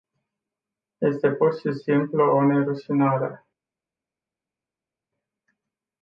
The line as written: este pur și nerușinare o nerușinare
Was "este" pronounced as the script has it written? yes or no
yes